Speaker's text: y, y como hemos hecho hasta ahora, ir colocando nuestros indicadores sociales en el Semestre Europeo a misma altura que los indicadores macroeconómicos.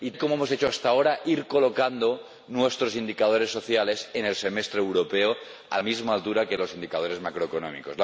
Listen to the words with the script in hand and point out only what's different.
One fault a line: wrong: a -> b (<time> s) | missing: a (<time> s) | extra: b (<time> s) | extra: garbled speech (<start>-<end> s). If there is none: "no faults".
no faults